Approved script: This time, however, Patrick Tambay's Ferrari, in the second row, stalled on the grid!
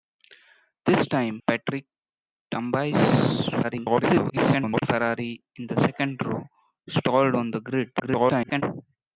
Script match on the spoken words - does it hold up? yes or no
no